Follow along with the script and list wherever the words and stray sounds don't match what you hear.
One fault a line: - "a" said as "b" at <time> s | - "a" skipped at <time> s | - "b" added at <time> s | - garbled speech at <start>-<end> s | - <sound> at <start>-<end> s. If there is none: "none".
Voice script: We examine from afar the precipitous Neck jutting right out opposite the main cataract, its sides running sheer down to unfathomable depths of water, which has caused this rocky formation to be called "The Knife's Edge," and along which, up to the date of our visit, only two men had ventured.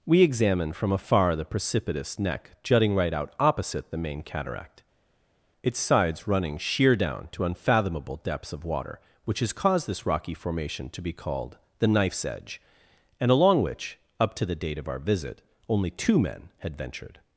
none